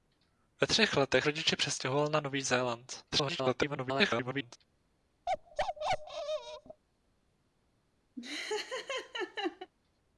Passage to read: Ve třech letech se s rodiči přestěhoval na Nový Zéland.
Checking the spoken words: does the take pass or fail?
fail